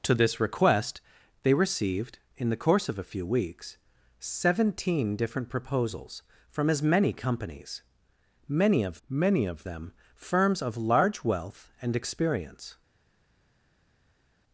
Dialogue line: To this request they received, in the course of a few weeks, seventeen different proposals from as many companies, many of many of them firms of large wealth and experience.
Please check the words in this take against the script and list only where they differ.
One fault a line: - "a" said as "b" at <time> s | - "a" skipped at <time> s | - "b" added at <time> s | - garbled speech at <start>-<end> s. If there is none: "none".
none